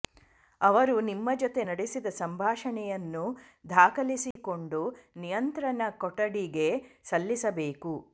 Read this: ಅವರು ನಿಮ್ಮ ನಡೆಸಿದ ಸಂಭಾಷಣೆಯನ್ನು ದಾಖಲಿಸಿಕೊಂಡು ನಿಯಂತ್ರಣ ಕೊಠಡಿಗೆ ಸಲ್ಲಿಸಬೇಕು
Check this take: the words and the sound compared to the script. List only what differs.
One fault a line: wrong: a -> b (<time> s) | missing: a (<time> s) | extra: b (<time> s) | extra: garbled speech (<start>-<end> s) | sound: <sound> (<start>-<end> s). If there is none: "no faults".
extra: ಜೊತೆ (1.3 s)
sound: dropout (4.3-4.4 s)